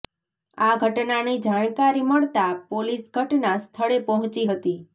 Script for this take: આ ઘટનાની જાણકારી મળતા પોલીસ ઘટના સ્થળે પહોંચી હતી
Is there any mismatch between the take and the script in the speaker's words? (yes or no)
no